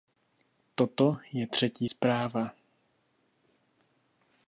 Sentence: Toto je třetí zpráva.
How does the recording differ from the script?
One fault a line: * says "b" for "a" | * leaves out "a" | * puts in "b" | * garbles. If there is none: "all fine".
all fine